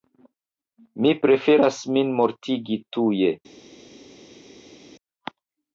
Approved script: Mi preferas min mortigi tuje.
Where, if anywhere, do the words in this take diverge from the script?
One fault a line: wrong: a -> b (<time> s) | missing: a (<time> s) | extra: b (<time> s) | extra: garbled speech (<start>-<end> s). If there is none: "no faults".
no faults